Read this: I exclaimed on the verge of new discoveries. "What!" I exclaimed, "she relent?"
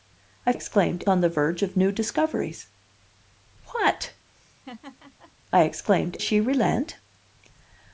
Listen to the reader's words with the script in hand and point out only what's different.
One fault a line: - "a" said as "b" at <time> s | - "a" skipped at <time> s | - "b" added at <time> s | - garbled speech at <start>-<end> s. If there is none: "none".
none